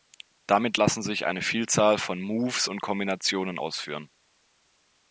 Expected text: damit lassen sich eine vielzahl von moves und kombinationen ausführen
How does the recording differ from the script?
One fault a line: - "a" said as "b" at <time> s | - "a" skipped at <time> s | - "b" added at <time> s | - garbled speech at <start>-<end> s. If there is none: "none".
none